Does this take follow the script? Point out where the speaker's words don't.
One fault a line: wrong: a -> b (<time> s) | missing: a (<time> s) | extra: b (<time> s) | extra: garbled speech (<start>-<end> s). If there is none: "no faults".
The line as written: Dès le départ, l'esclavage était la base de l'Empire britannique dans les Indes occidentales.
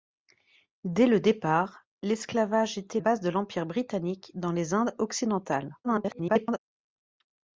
missing: la (3.0 s)
extra: garbled speech (5.8-6.6 s)